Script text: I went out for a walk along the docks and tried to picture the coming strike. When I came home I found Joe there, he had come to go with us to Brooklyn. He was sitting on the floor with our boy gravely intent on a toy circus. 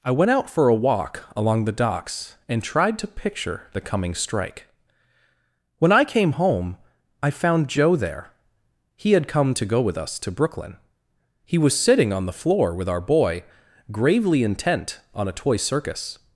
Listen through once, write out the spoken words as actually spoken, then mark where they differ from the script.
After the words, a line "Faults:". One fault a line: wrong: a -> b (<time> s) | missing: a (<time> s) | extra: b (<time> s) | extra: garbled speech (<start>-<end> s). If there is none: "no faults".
I went out for a walk along the docks and tried to picture the coming strike. When I came home I found Joe there, he had come to go with us to Brooklyn. He was sitting on the floor with our boy gravely intent on a toy circus.
Faults:
no faults